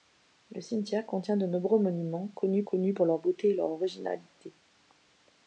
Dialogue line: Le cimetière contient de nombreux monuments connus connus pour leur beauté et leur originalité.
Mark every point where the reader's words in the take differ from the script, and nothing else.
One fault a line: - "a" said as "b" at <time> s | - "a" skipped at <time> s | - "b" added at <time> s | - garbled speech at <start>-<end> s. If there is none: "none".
none